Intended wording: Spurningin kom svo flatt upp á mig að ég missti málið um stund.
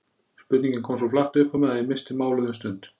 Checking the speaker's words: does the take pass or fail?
pass